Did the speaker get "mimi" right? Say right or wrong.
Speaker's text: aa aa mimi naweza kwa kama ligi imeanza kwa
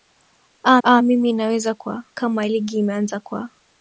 right